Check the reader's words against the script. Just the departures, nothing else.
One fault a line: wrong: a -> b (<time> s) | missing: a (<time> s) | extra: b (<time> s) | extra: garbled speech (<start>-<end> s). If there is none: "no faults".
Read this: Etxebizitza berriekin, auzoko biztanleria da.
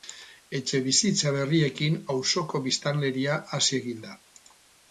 extra: hazi egin (3.6 s)